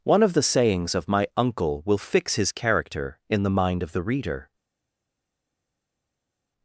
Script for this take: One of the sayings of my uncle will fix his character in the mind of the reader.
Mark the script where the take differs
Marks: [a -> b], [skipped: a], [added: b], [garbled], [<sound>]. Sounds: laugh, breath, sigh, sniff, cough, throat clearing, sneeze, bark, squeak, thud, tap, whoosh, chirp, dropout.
One of the sayings of my uncle will fix his character in the mind of the reader.